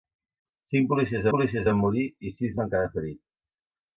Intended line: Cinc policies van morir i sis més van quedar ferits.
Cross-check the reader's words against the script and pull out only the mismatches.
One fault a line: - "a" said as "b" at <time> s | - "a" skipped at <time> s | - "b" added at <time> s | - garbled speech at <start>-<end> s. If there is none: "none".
- "policies" added at 1.3 s
- "més" skipped at 2.6 s